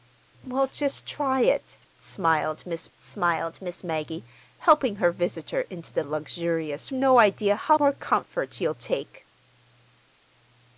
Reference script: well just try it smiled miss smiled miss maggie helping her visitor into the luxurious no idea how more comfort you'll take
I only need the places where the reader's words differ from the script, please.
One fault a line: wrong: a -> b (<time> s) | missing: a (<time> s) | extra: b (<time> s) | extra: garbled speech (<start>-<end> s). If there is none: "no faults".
no faults